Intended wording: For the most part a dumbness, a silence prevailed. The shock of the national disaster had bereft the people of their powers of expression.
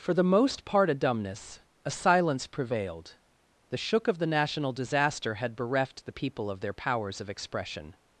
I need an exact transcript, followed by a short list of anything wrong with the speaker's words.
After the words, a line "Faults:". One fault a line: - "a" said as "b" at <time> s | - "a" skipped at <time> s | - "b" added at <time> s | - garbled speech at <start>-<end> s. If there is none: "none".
For the most part a dumbness, a silence prevailed. The shook of the national disaster had bereft the people of their powers of expression.
Faults:
- "shock" said as "shook" at 3.8 s